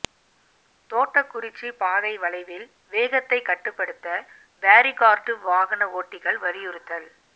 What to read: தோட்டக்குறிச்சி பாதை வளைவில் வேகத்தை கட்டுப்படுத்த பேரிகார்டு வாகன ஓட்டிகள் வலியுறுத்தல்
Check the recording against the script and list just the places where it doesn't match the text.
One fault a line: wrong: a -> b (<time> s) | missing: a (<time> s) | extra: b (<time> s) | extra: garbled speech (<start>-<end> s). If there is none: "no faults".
no faults